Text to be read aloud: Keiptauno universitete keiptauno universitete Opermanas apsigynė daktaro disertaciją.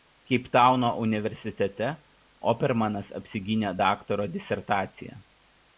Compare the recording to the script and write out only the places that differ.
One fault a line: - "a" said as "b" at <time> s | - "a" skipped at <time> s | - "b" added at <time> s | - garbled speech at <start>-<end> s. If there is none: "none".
- "keiptauno universitete" skipped at 1.9 s